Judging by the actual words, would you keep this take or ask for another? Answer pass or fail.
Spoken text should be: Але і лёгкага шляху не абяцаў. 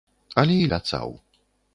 fail